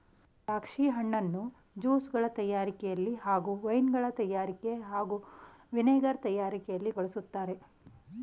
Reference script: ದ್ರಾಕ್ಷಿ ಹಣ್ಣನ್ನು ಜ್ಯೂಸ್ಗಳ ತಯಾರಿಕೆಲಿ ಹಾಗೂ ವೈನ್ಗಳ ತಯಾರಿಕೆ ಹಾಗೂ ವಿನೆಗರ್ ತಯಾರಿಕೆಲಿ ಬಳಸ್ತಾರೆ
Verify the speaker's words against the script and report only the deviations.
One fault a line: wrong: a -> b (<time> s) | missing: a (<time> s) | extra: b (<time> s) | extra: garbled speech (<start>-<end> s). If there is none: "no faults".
no faults